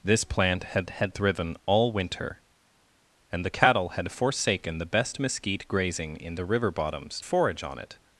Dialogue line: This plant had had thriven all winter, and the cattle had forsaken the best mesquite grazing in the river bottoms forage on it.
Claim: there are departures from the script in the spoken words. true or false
false